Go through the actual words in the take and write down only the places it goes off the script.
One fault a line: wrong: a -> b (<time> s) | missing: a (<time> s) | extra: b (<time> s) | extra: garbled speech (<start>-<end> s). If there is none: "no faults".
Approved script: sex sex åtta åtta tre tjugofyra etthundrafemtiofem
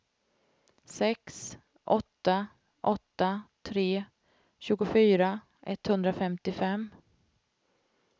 missing: sex (1.6 s)